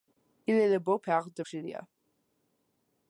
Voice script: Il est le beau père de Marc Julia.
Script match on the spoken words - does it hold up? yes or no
no